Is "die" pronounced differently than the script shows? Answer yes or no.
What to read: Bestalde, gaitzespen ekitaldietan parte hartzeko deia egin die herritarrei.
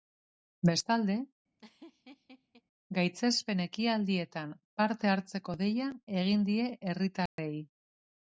no